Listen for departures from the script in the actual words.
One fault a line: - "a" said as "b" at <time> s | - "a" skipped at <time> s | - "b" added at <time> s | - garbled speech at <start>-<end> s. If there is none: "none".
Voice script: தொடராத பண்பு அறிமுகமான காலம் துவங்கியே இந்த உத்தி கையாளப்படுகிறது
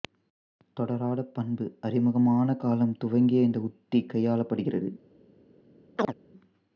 none